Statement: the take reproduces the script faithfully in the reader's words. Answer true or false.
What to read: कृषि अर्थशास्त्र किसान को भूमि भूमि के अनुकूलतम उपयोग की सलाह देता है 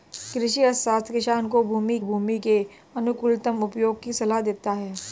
true